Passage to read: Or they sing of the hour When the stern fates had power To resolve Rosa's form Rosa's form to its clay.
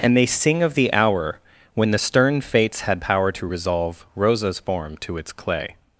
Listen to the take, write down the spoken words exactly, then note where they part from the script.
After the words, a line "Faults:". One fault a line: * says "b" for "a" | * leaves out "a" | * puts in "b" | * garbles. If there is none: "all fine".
And they sing of the hour When the stern fates had power To resolve Rosa's form to its clay.
Faults:
* says "And" for "Or"
* leaves out "Rosa's form"